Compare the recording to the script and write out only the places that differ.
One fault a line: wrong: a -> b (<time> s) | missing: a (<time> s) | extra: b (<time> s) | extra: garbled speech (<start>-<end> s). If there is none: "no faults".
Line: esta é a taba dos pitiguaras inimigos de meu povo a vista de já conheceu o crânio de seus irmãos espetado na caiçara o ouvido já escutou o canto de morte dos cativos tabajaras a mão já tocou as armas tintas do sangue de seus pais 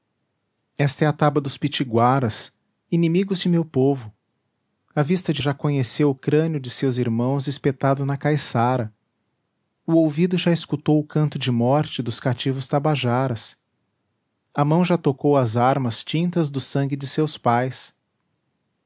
no faults